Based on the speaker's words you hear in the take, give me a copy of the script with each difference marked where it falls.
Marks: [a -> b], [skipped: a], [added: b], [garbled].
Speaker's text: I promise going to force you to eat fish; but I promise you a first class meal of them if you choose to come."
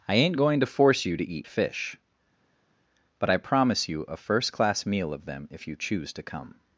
I [promise -> ain't] going to force you to eat fish; but I promise you a first class meal of them if you choose to come."